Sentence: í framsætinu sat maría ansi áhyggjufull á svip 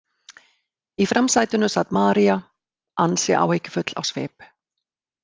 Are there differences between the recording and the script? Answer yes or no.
no